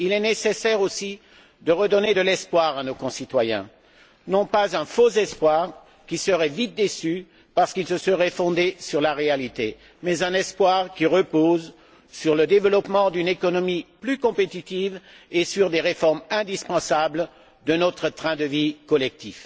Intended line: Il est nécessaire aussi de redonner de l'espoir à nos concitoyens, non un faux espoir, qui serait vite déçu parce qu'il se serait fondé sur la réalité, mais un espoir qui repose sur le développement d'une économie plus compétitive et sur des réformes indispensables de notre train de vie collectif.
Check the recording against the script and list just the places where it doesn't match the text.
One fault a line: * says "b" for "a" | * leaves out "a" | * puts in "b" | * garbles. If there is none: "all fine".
* puts in "pas"